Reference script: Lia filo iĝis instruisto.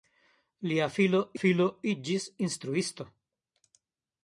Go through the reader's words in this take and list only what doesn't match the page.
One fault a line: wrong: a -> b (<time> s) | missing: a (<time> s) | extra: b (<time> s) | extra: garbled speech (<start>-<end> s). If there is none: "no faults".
extra: filo (1.4 s)